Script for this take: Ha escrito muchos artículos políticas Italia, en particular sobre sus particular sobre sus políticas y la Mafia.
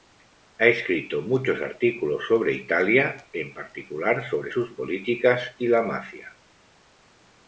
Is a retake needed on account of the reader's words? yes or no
yes